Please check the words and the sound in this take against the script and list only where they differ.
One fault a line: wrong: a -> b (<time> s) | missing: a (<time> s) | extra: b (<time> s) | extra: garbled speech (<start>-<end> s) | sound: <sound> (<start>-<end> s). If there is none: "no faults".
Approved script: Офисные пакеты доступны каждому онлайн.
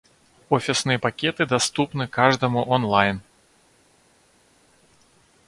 no faults